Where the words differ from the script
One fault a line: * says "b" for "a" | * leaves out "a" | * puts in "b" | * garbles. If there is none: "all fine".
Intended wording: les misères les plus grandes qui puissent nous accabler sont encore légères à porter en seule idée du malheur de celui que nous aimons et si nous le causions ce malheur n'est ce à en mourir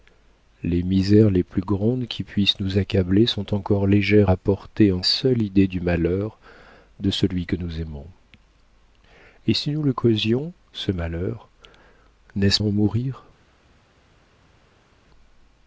all fine